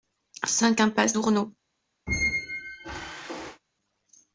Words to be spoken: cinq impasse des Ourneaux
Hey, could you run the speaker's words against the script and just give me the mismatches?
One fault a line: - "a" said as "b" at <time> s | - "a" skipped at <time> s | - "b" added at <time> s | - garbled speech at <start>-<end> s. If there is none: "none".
- "des" skipped at 1.2 s